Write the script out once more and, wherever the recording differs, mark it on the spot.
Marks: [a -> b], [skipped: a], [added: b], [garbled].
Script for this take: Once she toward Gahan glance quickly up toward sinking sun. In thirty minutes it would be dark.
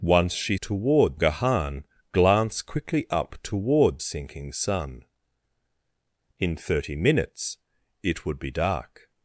Once she toward Gahan glance quickly up toward sinking sun. In thirty minutes it would be dark.